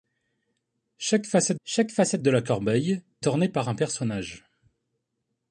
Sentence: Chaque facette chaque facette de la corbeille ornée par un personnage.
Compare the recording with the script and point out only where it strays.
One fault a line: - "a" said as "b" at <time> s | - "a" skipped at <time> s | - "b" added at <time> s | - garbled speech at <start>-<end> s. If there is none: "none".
none